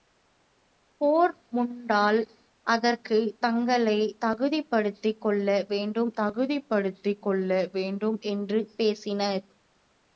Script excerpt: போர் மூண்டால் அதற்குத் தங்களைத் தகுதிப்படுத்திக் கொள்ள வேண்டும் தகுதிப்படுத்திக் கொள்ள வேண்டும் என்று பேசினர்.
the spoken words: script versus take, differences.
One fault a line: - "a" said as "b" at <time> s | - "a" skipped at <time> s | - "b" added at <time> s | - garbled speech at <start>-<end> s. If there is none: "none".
none